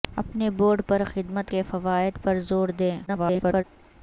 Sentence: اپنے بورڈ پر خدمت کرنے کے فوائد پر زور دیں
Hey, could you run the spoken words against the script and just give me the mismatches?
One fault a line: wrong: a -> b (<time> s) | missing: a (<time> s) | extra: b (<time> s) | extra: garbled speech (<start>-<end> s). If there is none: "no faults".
missing: کرنے (1.5 s)
extra: garbled speech (3.1-3.6 s)